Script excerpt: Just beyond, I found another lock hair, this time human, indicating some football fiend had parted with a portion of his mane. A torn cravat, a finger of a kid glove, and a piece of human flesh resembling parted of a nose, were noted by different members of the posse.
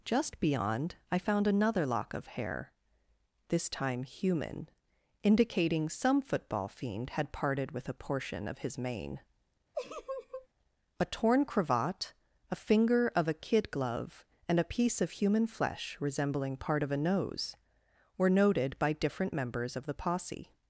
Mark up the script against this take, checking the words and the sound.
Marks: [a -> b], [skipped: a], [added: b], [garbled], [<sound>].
Just beyond, I found another lock [added: of] hair, this time human, indicating some football fiend had parted with a portion of his mane. [laugh] A torn cravat, a finger of a kid glove, and a piece of human flesh resembling [parted -> part] of a nose, were noted by different members of the posse.